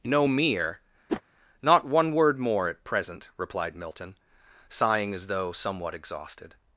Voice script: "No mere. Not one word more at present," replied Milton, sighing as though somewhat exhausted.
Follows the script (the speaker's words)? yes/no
yes